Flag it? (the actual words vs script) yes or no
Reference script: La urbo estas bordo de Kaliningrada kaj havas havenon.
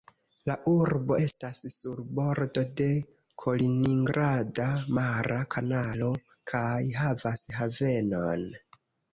yes